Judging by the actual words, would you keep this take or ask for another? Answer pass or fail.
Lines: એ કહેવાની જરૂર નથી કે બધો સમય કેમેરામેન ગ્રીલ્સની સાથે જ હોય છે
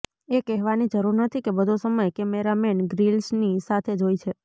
pass